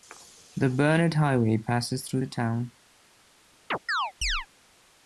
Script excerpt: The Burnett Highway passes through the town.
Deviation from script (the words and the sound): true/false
true